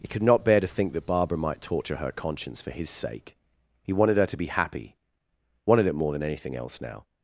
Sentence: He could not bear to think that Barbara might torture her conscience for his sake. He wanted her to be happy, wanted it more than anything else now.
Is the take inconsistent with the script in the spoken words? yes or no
no